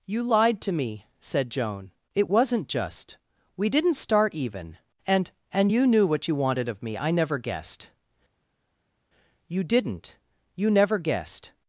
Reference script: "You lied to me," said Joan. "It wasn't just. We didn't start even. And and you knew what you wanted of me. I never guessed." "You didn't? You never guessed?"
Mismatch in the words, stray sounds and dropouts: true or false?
false